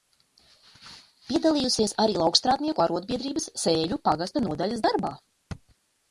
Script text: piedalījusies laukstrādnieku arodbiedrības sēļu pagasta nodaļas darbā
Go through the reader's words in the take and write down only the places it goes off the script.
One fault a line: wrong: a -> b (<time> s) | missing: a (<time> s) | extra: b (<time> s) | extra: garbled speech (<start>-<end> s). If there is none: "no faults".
extra: arī (2.0 s)